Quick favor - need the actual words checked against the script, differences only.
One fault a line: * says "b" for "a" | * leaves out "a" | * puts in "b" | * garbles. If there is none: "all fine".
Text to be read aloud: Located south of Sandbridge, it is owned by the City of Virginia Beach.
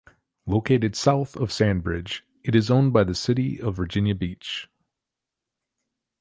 all fine